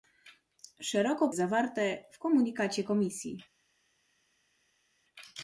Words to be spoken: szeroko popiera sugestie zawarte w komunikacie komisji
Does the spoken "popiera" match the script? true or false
false